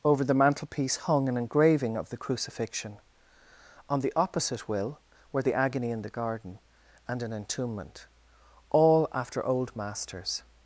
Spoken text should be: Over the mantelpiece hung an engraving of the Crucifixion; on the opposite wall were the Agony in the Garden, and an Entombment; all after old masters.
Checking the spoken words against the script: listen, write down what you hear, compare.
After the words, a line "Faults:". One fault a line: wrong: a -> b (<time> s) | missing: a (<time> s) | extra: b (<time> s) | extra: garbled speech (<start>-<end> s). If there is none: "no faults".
Over the mantelpiece hung an engraving of the Crucifixion; on the opposite will were the Agony in the Garden, and an Entombment; all after old masters.
Faults:
wrong: wall -> will (4.7 s)